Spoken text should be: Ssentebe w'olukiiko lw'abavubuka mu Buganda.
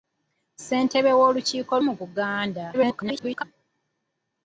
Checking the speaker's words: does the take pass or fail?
fail